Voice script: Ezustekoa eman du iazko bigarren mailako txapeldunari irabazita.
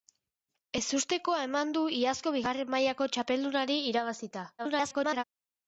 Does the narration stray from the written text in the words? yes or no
yes